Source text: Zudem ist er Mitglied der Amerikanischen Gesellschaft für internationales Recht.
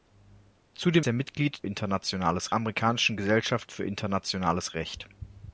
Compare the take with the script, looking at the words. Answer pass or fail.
fail